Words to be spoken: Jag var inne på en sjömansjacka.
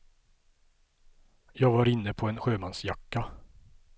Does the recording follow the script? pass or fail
pass